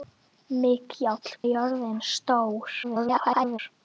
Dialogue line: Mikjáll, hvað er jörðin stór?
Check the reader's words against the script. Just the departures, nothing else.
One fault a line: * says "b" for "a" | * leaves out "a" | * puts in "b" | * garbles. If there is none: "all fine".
* leaves out "hvað"
* garbles